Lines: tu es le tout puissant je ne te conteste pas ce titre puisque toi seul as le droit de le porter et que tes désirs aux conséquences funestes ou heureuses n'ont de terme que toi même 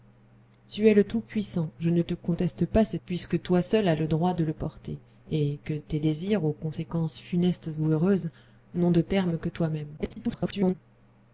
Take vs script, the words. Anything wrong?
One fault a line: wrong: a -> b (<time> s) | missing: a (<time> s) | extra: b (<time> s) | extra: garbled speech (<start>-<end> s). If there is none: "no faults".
missing: titre (3.0 s)
extra: garbled speech (10.0-10.7 s)